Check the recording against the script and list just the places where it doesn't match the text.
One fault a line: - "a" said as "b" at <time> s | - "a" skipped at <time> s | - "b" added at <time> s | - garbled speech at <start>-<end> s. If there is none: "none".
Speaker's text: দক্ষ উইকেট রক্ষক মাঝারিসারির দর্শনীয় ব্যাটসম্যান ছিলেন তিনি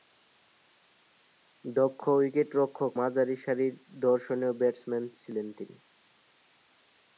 none